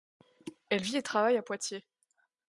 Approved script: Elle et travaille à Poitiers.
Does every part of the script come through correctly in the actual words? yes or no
no